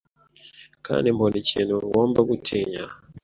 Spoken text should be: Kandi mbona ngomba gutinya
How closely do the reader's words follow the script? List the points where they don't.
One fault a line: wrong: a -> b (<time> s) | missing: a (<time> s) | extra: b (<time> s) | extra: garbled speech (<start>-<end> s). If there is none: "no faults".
extra: ikintu (1.4 s)